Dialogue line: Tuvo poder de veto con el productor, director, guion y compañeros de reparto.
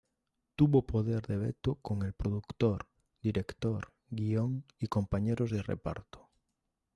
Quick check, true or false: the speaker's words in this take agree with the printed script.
true